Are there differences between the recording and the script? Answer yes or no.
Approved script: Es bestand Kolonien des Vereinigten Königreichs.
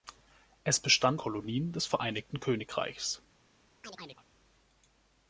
no